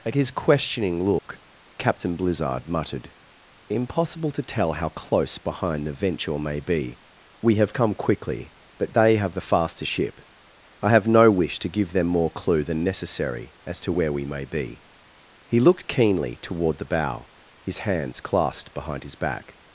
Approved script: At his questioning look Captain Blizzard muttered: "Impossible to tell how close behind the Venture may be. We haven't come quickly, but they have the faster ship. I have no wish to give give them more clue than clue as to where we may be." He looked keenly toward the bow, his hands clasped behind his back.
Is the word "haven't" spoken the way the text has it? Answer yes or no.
no